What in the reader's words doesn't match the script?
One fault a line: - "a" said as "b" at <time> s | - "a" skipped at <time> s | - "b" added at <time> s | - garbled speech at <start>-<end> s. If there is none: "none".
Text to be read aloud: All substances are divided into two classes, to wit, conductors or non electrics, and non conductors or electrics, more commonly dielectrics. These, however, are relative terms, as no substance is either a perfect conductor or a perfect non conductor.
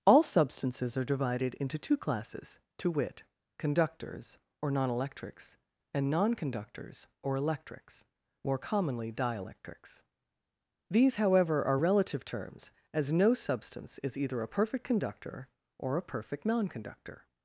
none